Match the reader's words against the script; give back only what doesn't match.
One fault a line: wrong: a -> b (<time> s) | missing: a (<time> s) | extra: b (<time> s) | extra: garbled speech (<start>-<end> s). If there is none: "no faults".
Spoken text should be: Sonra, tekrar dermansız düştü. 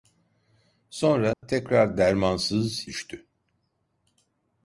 no faults